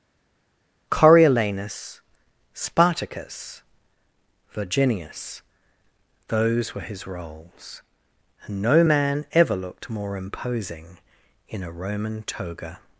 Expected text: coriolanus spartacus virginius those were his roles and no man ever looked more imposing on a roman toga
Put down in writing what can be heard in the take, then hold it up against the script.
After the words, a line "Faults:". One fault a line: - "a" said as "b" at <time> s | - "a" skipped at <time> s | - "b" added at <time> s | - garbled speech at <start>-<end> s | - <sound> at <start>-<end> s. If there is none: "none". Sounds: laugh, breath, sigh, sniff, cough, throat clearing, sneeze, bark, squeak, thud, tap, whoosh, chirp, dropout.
coriolanus spartacus virginius those were his roles and no man ever looked more imposing in a roman toga
Faults:
- "on" said as "in" at 11.5 s